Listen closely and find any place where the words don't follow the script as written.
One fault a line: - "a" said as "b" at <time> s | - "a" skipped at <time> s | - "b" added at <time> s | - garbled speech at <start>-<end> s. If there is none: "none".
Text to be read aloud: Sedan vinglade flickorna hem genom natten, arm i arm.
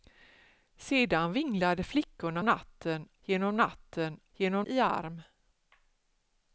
- "hem" said as "natten" at 2.4 s
- "arm" said as "genom" at 4.3 s